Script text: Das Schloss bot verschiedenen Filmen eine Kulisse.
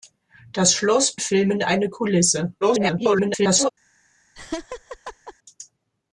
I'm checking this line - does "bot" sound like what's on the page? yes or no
no